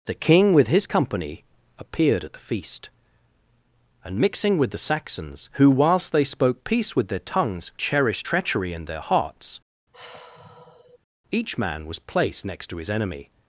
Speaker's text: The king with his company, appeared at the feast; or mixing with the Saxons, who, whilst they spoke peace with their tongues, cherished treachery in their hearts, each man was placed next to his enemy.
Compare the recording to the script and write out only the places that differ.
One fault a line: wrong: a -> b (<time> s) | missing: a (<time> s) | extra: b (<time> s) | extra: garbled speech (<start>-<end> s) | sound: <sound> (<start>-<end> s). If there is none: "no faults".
wrong: or -> and (4.0 s)
sound: sigh (9.9-11.0 s)